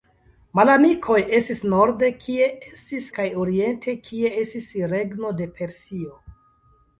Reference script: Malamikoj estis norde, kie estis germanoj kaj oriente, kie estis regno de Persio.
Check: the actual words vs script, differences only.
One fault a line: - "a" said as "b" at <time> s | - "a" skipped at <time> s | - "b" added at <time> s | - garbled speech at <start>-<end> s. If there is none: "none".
- "germanoj" skipped at 3.1 s